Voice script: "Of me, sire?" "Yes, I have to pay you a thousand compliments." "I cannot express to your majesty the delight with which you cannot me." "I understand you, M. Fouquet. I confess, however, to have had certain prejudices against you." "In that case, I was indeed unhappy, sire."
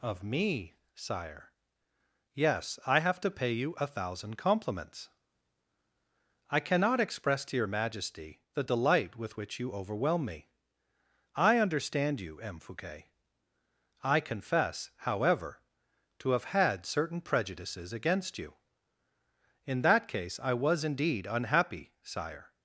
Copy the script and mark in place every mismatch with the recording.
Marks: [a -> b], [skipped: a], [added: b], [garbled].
"Of me, sire?" "Yes, I have to pay you a thousand compliments." "I cannot express to your majesty the delight with which you [cannot -> overwhelm] me." "I understand you, M. Fouquet. I confess, however, to have had certain prejudices against you." "In that case, I was indeed unhappy, sire."